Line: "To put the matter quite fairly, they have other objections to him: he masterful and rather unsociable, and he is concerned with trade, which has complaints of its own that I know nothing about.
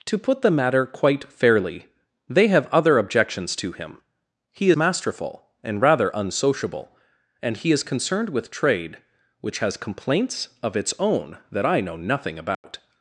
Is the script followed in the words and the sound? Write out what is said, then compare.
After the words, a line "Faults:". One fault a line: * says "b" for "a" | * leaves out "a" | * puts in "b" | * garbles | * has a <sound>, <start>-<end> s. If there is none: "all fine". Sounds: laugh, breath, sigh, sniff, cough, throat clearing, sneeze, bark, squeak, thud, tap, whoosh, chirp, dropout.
"To put the matter quite fairly, they have other objections to him: he masterful and rather unsociable, and he is concerned with trade, which has complaints of its own that I know nothing about.
Faults:
* has a dropout, 12.5-12.6 s